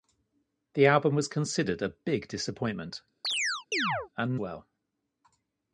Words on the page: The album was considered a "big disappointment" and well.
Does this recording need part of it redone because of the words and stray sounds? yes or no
yes